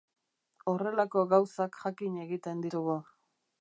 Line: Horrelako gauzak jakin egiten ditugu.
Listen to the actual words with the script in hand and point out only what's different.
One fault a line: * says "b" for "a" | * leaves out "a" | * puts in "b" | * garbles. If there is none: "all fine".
all fine